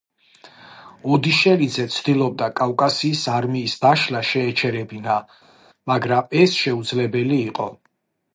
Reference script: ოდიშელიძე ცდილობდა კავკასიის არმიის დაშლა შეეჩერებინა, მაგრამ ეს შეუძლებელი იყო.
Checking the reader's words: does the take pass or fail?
pass